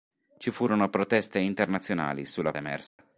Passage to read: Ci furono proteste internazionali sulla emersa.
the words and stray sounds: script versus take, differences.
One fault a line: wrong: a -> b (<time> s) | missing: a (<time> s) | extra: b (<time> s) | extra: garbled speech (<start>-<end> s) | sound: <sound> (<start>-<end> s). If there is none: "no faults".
sound: dropout (2.9-3.0 s)